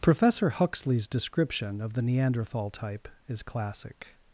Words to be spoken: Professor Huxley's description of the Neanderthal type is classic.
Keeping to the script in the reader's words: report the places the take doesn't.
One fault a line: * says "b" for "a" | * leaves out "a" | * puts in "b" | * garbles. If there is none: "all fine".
all fine